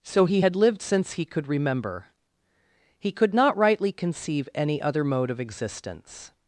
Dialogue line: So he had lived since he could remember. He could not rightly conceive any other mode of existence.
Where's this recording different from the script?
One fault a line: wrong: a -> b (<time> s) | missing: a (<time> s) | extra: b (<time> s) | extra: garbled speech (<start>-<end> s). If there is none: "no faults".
no faults